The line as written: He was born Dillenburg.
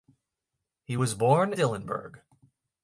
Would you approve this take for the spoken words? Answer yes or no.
yes